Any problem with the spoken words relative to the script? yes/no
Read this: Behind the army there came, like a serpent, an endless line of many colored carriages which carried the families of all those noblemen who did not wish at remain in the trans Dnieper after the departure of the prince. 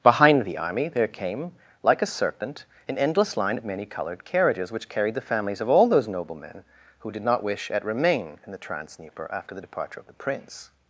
no